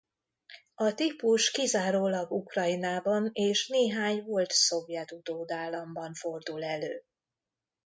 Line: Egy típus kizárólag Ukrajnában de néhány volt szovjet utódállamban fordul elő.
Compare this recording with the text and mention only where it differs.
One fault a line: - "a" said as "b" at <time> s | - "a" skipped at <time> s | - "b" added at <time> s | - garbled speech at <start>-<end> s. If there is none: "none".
- "Egy" said as "A" at 0.8 s
- "de" said as "és" at 3.3 s